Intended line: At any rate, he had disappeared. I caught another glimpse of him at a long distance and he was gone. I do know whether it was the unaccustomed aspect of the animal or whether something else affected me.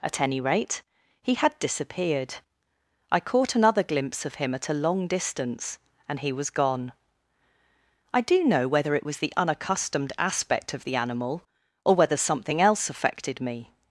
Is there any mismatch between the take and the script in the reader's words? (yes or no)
no